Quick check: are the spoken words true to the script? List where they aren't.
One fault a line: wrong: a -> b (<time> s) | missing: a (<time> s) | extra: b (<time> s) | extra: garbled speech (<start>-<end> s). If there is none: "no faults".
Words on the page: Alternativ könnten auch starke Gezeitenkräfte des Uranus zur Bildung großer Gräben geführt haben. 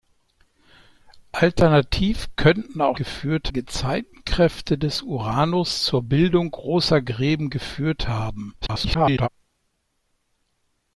wrong: starke -> geführt (2.9 s)
extra: garbled speech (8.6-9.3 s)